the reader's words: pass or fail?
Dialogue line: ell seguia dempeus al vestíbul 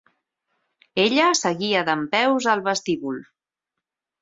fail